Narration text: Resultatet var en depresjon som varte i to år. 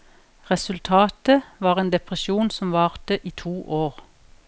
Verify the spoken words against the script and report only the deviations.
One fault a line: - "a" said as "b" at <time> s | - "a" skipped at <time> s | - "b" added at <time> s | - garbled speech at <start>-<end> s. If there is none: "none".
none